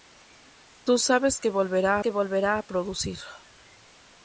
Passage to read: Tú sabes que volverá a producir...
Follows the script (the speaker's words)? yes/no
no